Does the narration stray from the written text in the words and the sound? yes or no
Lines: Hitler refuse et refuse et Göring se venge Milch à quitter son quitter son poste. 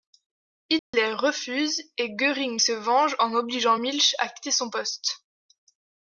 yes